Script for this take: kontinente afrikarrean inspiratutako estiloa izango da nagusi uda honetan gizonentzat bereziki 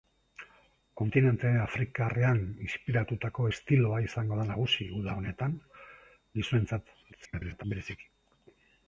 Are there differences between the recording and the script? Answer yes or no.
yes